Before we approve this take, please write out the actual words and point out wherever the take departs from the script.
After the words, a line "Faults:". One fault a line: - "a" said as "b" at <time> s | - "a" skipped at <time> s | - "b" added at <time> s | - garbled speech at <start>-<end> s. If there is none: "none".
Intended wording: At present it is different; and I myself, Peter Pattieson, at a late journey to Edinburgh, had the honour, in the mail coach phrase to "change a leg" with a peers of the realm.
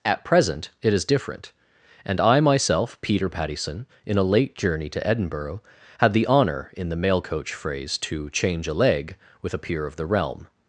At present it is different; and I myself, Peter Pattieson, in a late journey to Edinburgh, had the honour, in the mail coach phrase to "change a leg" with a peer of the realm.
Faults:
- "at" said as "in" at 4.0 s
- "peers" said as "peer" at 9.6 s